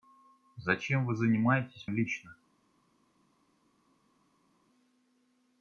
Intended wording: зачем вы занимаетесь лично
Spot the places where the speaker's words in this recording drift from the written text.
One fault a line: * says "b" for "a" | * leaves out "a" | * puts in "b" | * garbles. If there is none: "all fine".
all fine